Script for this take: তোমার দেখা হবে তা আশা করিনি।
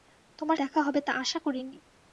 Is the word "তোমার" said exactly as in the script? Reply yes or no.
yes